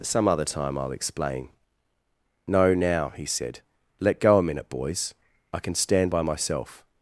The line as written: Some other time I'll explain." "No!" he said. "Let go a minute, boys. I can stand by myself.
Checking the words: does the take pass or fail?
fail